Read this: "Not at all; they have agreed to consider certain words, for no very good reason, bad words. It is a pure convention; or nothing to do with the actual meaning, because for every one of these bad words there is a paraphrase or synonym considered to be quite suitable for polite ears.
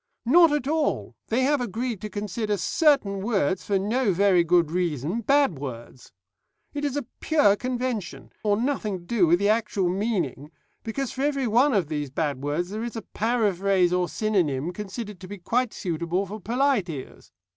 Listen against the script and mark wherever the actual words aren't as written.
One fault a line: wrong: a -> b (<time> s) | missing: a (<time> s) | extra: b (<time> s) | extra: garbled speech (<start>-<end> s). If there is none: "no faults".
no faults